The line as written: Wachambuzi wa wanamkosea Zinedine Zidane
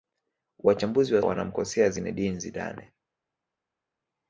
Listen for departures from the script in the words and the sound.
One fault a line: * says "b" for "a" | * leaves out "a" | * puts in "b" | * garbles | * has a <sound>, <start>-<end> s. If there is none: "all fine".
all fine